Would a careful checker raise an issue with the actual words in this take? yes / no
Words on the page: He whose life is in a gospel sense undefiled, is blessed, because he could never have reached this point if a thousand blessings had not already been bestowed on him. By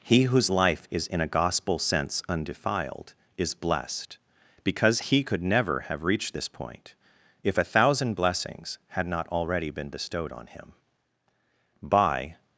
no